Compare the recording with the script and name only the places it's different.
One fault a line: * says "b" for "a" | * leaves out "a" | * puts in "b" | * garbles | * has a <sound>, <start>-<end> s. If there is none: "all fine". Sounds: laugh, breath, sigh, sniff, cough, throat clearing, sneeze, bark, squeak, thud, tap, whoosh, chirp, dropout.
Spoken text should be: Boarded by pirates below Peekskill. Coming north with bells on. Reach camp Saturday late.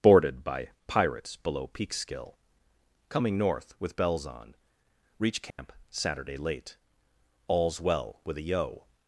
* has a dropout, 5.5-5.6 s
* puts in "All's well with a yo"